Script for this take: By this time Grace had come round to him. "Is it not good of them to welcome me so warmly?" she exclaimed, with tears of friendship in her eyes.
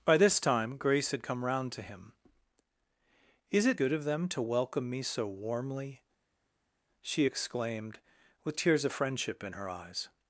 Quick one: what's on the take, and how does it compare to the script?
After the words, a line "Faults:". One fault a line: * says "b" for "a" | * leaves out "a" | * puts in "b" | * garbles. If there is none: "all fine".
By this time Grace had come round to him. "Is it good of them to welcome me so warmly?" she exclaimed, with tears of friendship in her eyes.
Faults:
* leaves out "not"